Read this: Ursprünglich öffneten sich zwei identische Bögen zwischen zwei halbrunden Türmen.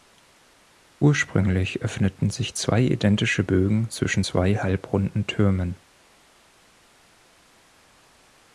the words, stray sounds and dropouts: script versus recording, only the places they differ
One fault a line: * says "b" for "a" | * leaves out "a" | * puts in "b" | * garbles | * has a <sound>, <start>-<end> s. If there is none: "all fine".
all fine